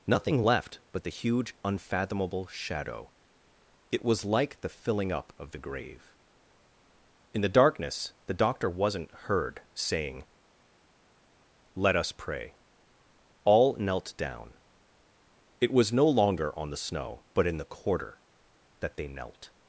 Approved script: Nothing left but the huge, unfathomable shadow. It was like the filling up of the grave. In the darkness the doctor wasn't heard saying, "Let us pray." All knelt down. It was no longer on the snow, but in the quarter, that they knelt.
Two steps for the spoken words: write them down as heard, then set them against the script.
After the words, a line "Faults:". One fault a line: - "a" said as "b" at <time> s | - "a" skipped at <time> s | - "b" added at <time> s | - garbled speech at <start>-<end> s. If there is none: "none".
Nothing left but the huge, unfathomable shadow. It was like the filling up of the grave. In the darkness the doctor wasn't heard saying, "Let us pray." All knelt down. It was no longer on the snow, but in the quarter, that they knelt.
Faults:
none